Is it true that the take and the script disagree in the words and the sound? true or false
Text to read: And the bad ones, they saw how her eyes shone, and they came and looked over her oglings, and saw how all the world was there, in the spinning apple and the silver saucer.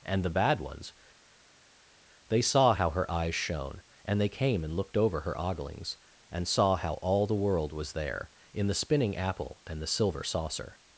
false